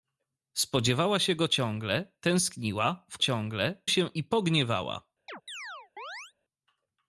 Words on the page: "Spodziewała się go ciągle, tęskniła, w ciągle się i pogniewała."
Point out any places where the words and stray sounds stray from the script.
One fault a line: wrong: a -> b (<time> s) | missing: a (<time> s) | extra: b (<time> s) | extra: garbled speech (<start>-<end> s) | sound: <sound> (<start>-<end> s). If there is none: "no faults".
sound: chirp (5.3-6.3 s)